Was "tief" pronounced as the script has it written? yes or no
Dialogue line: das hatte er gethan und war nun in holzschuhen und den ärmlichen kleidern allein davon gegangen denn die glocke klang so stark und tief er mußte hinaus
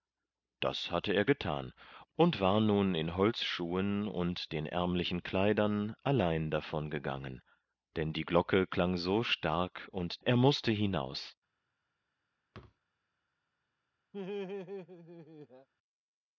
no